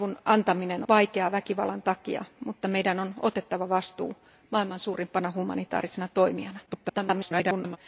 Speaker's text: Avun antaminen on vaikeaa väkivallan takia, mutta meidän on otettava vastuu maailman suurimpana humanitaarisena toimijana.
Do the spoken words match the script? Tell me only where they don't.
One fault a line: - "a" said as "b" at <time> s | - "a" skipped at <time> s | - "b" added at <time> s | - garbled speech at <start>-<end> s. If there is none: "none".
- "on" skipped at 0.8 s
- garbled speech at 6.7-7.8 s